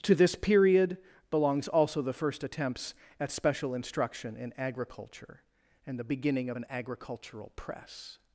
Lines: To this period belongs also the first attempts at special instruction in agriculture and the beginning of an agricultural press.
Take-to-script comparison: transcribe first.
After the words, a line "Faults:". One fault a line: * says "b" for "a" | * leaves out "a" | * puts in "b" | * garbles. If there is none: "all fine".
To this period belongs also the first attempts at special instruction in agriculture and the beginning of an agricultural press.
Faults:
all fine